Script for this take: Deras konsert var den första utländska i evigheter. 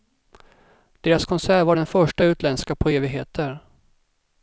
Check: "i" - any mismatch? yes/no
yes